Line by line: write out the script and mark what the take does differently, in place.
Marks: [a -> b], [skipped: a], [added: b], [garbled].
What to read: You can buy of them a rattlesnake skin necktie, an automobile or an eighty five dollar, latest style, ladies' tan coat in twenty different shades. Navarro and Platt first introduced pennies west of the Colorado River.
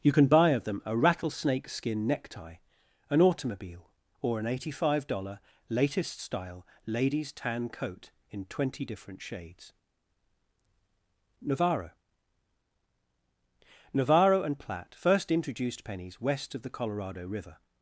You can buy of them a rattlesnake skin necktie, an automobile or an eighty five dollar, latest style, ladies' tan coat in twenty different shades. Navarro [added: Navarro] and Platt first introduced pennies west of the Colorado River.